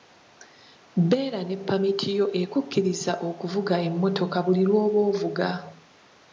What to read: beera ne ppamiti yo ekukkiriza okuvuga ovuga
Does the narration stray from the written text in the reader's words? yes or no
yes